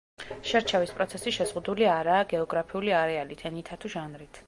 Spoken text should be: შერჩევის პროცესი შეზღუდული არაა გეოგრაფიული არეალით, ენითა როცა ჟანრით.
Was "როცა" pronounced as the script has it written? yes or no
no